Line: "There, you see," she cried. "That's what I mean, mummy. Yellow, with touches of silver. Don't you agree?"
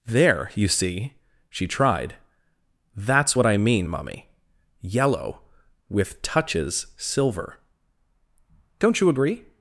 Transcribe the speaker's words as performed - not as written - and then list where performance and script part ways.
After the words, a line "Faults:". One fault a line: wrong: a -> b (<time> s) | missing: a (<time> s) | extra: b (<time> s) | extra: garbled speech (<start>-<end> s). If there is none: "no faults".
"There, you see," she tried. "That's what I mean, mummy. Yellow, with touches silver. Don't you agree?"
Faults:
wrong: cried -> tried (1.7 s)
missing: of (6.9 s)